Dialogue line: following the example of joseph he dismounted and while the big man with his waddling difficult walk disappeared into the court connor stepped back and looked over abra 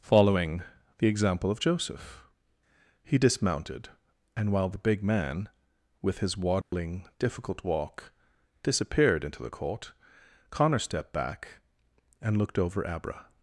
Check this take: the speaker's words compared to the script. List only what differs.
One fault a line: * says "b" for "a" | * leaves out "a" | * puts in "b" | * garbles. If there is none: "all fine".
all fine